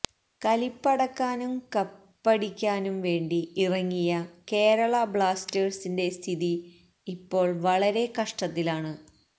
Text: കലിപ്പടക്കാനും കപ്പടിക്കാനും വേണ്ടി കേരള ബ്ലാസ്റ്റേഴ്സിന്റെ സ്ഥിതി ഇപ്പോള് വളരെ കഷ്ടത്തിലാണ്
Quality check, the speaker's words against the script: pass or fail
fail